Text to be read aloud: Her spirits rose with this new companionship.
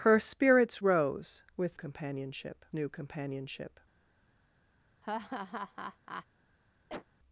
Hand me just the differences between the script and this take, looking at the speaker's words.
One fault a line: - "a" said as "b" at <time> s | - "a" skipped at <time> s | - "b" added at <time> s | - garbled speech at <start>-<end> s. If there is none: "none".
- "this" said as "companionship" at 1.7 s